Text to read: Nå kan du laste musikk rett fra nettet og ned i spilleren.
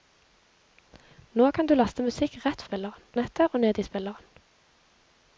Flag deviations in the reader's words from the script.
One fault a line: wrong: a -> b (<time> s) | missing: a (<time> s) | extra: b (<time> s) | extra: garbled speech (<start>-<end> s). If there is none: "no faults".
wrong: fra -> spilleren (2.7 s)